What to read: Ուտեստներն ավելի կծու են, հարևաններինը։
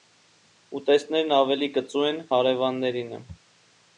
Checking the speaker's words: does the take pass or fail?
pass